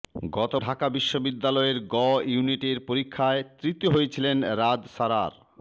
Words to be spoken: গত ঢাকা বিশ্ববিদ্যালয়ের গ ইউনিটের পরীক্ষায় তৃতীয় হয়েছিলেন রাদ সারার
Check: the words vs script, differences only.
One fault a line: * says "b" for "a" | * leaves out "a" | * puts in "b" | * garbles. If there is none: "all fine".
all fine